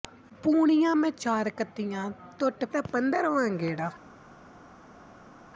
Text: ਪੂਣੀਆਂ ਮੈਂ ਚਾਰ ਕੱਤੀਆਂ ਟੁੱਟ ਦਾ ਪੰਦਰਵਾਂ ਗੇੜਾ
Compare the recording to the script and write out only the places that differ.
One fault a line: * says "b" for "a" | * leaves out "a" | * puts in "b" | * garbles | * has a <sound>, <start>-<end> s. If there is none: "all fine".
all fine